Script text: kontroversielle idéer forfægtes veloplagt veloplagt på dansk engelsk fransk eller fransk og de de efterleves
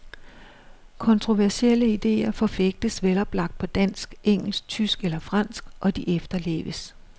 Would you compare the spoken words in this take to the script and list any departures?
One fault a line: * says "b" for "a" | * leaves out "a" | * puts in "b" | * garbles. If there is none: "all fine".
* leaves out "veloplagt"
* says "tysk" for "fransk"
* leaves out "de"